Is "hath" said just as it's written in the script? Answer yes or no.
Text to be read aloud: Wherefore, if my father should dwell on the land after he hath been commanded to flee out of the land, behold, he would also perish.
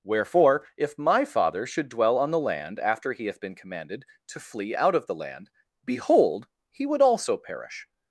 yes